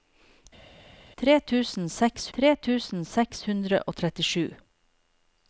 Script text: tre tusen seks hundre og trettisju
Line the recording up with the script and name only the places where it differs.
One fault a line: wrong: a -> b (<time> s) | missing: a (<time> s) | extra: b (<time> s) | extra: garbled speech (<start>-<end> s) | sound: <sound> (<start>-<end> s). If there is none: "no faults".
extra: tre tusen seks (2.4 s)